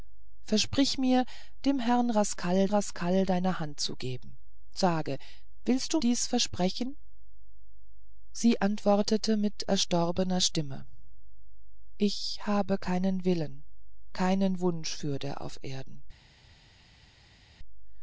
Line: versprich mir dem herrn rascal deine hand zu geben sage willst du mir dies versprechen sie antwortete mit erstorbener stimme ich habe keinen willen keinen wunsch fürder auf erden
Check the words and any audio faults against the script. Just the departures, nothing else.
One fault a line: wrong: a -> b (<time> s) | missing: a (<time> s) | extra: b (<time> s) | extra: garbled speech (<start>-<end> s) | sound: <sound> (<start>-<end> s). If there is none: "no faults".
extra: rascal (2.7 s)
missing: mir (6.0 s)